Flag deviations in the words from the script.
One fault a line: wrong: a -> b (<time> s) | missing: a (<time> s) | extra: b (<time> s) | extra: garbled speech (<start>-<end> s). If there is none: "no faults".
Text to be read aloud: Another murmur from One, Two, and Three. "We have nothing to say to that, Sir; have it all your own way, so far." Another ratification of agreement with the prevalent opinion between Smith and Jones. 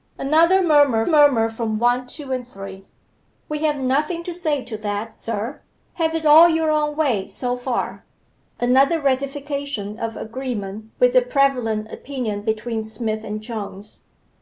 extra: murmur (1.1 s)